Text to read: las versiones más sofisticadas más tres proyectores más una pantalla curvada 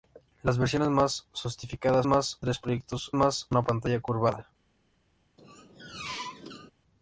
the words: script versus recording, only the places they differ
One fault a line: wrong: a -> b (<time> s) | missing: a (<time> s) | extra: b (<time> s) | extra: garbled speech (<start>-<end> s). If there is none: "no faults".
no faults